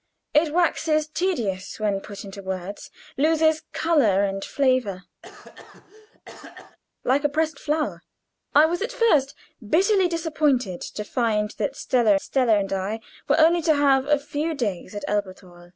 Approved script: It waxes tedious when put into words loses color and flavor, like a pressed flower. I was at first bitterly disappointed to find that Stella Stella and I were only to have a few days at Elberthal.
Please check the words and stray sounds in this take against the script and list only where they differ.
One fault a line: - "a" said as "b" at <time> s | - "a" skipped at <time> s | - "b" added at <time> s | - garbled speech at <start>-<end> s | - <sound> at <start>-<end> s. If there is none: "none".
- cough at 5.2-6.8 s